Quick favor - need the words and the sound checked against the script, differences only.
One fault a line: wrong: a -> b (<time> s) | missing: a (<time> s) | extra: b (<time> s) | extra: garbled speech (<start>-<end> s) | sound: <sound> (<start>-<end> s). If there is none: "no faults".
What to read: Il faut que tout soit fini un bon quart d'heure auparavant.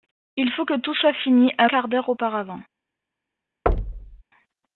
missing: bon (1.7 s)
sound: thud (3.7-4.2 s)